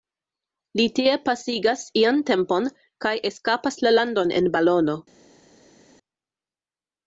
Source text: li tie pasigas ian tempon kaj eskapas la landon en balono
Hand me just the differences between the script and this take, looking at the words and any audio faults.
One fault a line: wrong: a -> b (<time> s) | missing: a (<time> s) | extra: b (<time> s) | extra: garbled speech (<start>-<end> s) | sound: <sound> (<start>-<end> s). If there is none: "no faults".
no faults